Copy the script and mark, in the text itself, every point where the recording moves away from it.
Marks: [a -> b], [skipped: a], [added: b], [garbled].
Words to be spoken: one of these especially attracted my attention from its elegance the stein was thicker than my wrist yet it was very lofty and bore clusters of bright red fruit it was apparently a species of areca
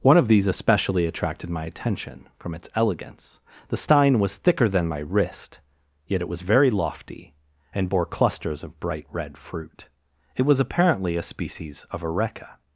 one of these especially attracted my attention from its elegance the stein was thicker than my wrist yet it was very lofty and bore clusters of bright red fruit it was apparently a species of areca